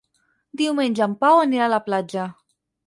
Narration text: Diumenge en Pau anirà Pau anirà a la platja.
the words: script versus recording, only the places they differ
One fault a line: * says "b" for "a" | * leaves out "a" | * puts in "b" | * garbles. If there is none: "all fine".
* leaves out "Pau anirà"